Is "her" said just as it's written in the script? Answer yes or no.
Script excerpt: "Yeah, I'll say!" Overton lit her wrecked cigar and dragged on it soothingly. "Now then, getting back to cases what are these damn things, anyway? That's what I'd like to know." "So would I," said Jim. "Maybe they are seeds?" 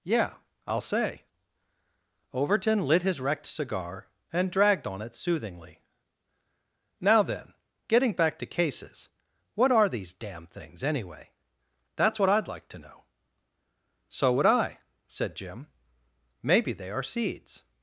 no